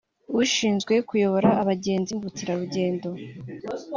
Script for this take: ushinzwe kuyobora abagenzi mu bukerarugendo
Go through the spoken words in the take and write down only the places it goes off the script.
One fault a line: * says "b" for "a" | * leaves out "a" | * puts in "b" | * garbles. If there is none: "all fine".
all fine